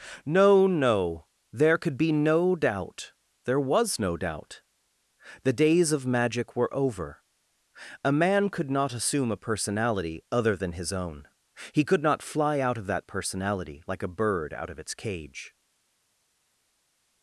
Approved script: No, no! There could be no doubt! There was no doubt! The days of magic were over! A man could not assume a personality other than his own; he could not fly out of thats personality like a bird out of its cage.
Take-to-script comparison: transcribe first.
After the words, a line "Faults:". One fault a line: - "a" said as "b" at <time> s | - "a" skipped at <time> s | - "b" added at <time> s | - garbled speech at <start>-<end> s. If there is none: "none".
No, no! There could be no doubt! There was no doubt! The days of magic were over! A man could not assume a personality other than his own; he could not fly out of that personality like a bird out of its cage.
Faults:
- "thats" said as "that" at 12.9 s